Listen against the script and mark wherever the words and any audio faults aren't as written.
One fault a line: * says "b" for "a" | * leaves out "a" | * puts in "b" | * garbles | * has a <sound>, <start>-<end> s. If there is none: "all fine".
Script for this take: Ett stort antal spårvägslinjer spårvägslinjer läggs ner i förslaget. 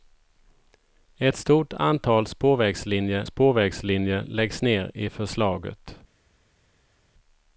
all fine